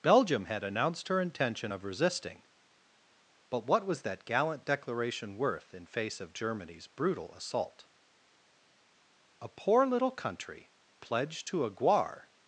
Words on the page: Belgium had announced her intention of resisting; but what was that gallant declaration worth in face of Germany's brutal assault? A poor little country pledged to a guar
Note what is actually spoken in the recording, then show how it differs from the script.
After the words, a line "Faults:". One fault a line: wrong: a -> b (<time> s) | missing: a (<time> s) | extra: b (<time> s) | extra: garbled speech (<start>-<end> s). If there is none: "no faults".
Belgium had announced her intention of resisting; but what was that gallant declaration worth in face of Germany's brutal assault? A poor little country pledged to a guar
Faults:
no faults